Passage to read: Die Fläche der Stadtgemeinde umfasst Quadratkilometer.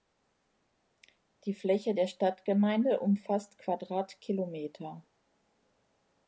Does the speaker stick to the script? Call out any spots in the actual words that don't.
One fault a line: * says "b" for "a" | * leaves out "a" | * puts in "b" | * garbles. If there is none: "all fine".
all fine